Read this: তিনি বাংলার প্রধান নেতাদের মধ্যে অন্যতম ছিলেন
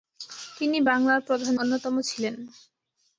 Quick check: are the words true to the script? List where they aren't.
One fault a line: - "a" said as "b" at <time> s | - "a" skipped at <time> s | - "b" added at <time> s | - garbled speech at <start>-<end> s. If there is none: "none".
- "নেতাদের মধ্যে" skipped at 1.5 s